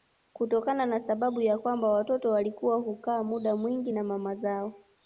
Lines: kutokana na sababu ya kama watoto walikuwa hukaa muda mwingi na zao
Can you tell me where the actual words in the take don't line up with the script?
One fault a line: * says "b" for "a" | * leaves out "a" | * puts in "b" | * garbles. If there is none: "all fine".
* says "kwamba" for "kama"
* puts in "mama"